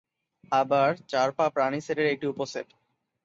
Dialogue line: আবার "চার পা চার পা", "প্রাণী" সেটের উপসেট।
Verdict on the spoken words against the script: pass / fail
fail